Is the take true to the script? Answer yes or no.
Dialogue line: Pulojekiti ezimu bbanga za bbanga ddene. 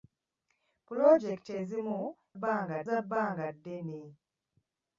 yes